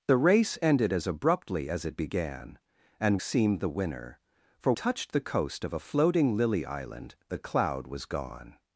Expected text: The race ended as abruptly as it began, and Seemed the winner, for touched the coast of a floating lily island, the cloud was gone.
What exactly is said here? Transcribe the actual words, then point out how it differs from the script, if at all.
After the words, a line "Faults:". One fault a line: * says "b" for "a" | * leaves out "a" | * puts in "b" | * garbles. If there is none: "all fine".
The race ended as abruptly as it began, and Seemed the winner, for touched the coast of a floating lily island, the cloud was gone.
Faults:
all fine